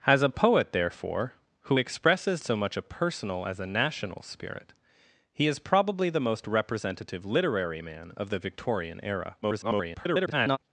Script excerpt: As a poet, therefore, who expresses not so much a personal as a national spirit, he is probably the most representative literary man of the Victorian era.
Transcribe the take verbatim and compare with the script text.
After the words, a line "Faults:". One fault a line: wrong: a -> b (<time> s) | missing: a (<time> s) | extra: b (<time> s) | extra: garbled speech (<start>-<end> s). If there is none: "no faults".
As a poet, therefore, who expresses so much a personal as a national spirit, he is probably the most representative literary man of the Victorian era. [garbled]
Faults:
missing: not (2.4 s)
extra: garbled speech (9.4-10.6 s)